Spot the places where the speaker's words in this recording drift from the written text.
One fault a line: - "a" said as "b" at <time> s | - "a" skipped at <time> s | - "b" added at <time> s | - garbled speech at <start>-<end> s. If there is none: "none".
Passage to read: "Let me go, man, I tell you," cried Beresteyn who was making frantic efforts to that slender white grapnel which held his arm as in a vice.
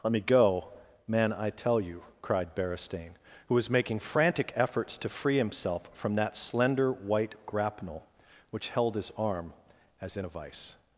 - "free himself from" added at 5.1 s